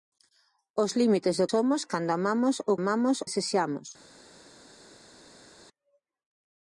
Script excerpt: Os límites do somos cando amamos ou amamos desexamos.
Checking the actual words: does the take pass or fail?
pass